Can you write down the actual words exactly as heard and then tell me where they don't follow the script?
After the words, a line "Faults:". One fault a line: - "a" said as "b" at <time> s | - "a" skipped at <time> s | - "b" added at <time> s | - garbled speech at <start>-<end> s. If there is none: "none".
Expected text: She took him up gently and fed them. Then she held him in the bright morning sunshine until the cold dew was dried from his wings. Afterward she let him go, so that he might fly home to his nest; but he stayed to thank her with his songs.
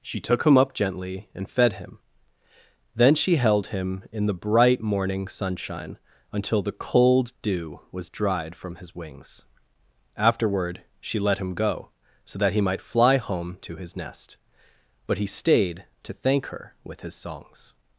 She took him up gently and fed him. Then she held him in the bright morning sunshine until the cold dew was dried from his wings. Afterward she let him go, so that he might fly home to his nest; but he stayed to thank her with his songs.
Faults:
- "them" said as "him" at 1.7 s